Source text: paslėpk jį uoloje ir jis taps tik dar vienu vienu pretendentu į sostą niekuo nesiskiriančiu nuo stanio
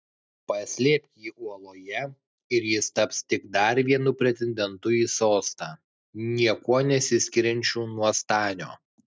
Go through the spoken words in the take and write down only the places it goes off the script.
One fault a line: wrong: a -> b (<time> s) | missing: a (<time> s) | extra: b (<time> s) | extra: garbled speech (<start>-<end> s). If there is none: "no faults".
missing: vienu (4.1 s)